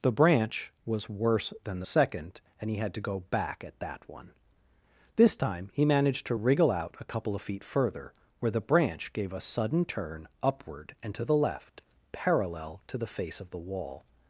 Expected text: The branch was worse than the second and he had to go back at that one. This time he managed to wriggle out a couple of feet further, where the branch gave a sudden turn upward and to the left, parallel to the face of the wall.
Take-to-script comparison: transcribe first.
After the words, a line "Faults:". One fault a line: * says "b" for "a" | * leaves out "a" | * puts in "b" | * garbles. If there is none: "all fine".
The branch was worse than the second and he had to go back at that one. This time he managed to wriggle out a couple of feet further, where the branch gave a sudden turn upward and to the left, parallel to the face of the wall.
Faults:
all fine